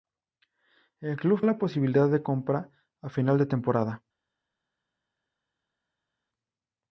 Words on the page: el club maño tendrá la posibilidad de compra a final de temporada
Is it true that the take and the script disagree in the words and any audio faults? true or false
true